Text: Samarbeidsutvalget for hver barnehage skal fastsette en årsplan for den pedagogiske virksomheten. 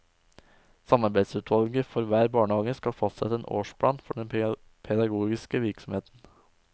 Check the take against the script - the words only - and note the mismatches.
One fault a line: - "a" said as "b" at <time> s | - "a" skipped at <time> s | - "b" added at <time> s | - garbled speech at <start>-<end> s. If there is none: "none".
none